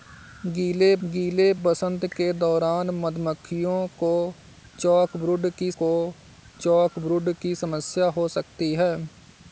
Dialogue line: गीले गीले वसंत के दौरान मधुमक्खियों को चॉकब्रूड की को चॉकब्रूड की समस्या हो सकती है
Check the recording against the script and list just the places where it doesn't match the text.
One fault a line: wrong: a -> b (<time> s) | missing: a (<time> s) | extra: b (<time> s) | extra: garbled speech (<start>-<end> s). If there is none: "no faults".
no faults